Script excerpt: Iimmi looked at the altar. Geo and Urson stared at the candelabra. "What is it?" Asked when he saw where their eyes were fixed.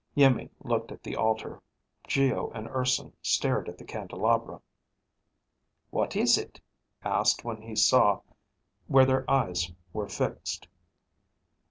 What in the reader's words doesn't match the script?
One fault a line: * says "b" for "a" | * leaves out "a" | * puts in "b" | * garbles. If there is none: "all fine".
all fine